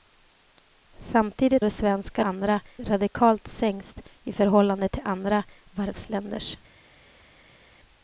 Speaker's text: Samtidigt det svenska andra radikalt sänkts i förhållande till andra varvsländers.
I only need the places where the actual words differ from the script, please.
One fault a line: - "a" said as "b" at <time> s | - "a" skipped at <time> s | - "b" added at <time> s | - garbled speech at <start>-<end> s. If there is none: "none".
none